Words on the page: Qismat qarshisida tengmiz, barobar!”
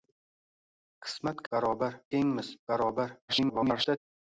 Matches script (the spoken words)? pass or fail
fail